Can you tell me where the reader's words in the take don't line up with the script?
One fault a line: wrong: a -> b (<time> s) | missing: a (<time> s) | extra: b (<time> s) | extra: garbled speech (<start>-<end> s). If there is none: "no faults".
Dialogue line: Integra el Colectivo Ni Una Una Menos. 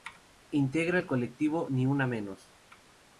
missing: Una (2.0 s)